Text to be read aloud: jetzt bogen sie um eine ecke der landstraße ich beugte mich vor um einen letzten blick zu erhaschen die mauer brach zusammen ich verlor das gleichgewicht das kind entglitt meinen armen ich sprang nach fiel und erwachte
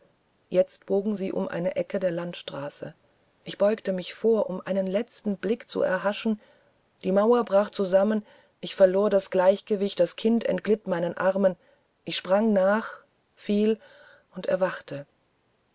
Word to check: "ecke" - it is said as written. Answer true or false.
true